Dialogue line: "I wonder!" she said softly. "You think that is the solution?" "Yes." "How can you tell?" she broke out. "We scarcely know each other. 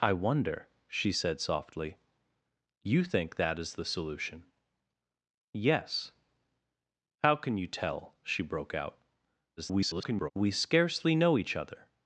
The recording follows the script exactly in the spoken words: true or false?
false